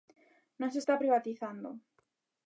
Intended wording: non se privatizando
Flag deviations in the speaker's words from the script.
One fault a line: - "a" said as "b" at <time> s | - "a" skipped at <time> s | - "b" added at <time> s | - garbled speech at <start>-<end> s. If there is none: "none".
- "está" added at 0.8 s